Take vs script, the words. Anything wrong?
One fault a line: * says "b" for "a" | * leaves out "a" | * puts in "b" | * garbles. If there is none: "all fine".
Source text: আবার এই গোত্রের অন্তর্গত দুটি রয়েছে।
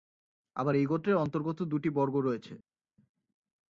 * puts in "বর্গ"